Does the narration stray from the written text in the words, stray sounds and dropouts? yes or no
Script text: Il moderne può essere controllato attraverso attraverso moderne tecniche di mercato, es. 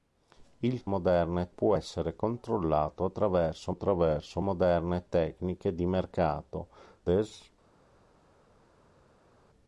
no